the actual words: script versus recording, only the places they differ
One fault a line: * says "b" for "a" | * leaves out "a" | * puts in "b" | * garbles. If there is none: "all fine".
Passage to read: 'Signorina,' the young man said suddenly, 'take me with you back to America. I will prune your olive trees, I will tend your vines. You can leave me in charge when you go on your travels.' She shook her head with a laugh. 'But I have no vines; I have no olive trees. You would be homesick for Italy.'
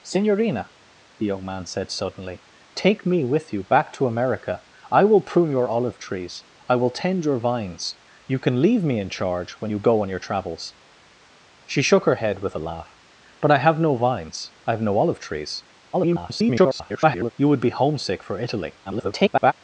* garbles
* garbles